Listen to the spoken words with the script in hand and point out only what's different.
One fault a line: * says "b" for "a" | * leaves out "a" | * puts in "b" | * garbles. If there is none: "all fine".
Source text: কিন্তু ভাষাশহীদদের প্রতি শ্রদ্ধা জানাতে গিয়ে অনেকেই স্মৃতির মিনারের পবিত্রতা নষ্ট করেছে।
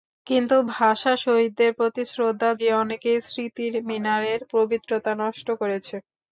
* leaves out "জানাতে"